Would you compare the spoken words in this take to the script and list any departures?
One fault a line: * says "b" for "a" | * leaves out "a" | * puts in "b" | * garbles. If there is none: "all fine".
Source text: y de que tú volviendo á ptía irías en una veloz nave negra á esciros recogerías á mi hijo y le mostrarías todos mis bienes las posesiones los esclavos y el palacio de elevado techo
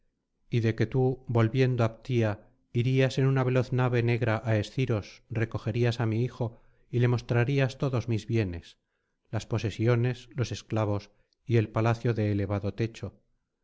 all fine